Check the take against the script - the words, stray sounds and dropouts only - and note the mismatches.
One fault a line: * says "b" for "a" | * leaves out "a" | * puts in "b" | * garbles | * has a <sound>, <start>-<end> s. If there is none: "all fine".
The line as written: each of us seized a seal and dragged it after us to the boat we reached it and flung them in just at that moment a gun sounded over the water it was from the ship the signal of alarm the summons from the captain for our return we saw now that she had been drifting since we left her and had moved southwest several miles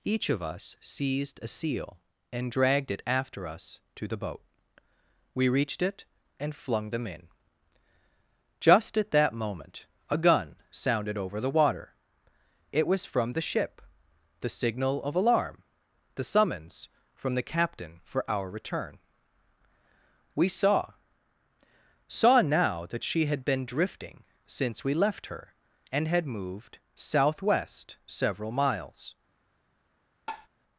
* puts in "saw"
* has a tap, 30.3-30.5 s